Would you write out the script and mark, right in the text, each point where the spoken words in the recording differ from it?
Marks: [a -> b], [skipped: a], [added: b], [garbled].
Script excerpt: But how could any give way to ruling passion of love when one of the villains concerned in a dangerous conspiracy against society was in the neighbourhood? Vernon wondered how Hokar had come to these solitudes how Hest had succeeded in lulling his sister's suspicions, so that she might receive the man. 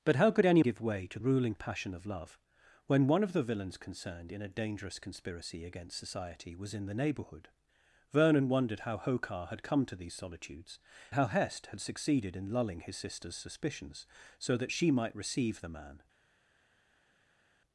But how could any give way to ruling passion of love when one of the villains concerned in a dangerous conspiracy against society was in the neighbourhood? Vernon wondered how Hokar had come to these solitudes how Hest had succeeded in lulling his sister's suspicions, so that she might receive the man.